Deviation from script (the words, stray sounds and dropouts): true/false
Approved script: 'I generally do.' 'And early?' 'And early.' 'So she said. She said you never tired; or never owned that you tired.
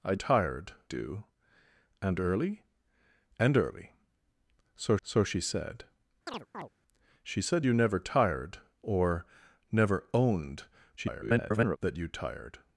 true